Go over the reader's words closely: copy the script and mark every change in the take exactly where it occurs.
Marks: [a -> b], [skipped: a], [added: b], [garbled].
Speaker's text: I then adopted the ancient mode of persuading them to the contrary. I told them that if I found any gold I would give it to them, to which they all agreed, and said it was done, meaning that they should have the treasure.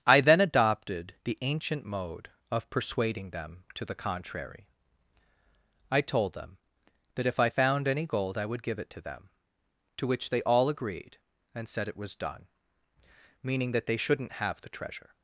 I then adopted the ancient mode of persuading them to the contrary. I told them that if I found any gold I would give it to them, to which they all agreed, and said it was done, meaning that they [should -> shouldn't] have the treasure.